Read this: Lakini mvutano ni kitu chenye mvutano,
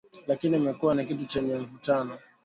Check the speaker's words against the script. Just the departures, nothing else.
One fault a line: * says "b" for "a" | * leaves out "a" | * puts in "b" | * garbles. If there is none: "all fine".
* says "imekuwa" for "mvutano"